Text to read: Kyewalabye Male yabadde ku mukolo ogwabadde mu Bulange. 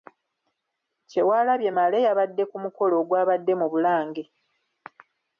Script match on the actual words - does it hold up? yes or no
yes